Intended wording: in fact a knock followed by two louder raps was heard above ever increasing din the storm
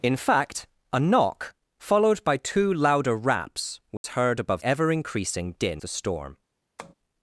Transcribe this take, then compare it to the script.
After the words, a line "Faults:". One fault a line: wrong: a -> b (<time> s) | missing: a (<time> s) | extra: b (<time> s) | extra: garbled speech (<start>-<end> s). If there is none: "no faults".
in fact a knock followed by two louder raps was heard above ever increasing din the storm
Faults:
no faults